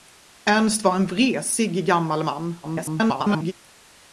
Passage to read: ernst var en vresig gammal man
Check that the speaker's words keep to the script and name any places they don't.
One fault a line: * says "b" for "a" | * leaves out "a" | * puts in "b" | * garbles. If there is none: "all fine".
* garbles